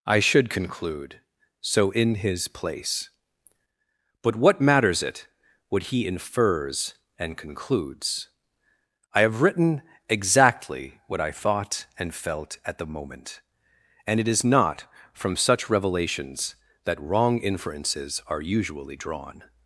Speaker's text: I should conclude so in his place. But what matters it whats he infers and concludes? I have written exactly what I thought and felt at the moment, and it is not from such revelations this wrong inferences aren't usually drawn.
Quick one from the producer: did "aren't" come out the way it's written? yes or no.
no